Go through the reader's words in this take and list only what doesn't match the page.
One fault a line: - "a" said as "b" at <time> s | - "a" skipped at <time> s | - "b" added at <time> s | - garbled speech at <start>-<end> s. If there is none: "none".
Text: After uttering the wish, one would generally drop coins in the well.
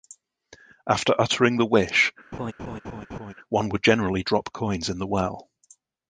none